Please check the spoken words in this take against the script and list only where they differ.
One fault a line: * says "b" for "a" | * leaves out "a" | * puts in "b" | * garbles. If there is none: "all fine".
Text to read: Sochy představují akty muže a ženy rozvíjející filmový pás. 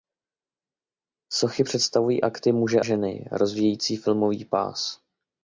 * leaves out "a"